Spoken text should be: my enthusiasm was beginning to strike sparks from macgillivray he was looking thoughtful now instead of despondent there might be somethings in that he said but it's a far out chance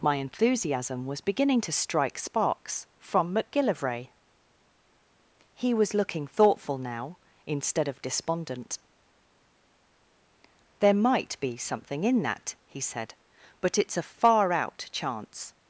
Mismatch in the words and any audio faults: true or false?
true